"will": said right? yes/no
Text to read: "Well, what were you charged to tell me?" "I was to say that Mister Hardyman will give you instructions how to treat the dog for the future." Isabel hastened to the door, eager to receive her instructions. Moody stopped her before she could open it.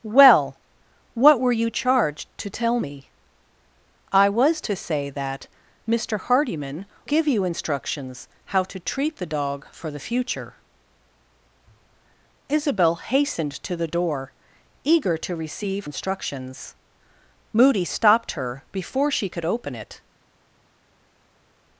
no